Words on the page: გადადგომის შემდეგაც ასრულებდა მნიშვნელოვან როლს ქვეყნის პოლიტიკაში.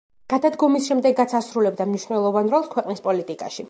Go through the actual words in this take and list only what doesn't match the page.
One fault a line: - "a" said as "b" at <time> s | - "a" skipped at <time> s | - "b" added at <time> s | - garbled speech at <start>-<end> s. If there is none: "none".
none